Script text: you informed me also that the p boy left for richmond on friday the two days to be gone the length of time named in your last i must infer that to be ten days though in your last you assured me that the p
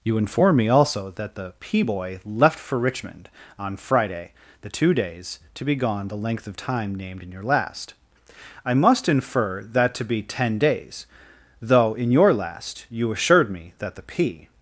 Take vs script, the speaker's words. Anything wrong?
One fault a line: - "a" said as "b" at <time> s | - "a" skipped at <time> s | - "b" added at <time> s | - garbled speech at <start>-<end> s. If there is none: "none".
- "informed" said as "inform" at 0.2 s